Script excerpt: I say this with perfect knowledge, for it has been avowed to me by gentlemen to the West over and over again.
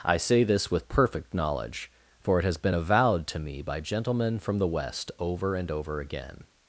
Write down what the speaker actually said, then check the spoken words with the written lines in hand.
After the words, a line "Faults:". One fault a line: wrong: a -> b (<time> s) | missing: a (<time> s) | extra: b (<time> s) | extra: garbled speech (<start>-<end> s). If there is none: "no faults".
I say this with perfect knowledge, for it has been avowed to me by gentlemen from the West over and over again.
Faults:
wrong: to -> from (4.4 s)